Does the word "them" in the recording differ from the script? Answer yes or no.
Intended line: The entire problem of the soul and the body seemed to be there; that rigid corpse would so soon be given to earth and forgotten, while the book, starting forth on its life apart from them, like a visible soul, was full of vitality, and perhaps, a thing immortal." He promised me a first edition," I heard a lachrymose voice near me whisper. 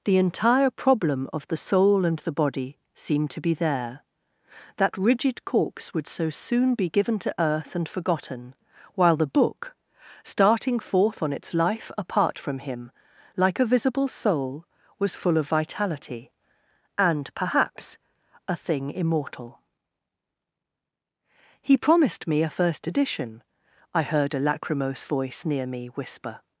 yes